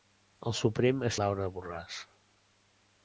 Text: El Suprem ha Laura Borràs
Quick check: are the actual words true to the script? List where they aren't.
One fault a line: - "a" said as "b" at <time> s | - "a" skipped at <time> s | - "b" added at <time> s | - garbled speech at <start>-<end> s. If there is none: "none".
none